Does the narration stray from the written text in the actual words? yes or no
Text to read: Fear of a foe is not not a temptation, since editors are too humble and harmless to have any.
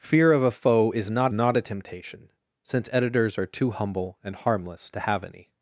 no